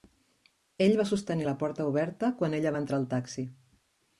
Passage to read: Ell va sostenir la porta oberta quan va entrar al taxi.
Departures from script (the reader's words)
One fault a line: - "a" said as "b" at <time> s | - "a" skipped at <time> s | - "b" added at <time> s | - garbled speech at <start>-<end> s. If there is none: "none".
- "ella" added at 2.6 s